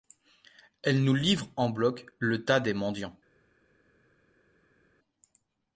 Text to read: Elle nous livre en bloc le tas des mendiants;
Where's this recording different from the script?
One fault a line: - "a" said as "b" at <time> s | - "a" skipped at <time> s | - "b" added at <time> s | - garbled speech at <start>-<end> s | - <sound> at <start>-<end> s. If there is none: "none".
none